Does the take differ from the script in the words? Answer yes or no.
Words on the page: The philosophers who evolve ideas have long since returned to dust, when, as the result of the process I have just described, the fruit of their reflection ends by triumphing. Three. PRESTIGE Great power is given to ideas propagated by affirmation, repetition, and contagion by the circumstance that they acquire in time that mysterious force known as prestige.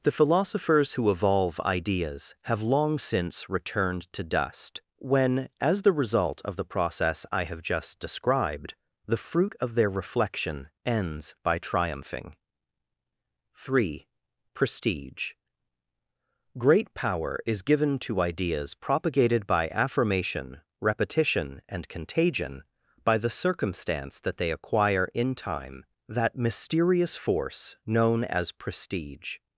no